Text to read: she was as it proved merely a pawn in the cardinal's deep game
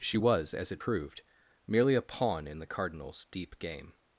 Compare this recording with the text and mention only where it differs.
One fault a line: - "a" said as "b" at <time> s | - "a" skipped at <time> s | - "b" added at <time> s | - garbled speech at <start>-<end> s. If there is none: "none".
none